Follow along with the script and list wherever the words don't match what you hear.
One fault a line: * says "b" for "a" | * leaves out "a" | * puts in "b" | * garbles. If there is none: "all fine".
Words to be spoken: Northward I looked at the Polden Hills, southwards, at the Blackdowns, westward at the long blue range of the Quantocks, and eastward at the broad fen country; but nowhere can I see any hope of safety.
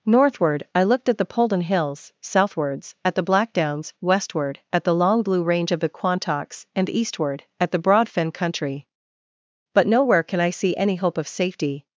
all fine